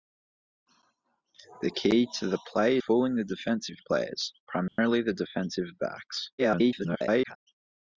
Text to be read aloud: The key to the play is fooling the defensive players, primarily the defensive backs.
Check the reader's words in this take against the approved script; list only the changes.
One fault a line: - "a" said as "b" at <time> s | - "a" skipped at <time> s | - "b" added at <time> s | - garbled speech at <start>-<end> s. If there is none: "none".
- "is" skipped at 2.8 s
- garbled speech at 6.4-7.4 s